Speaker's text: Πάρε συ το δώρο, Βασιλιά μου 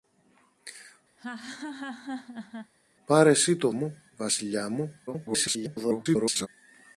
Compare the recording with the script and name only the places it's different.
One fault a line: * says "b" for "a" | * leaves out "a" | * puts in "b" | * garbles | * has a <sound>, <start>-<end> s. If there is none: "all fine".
* has a laugh, 1.2-2.7 s
* says "μου" for "δώρο"
* garbles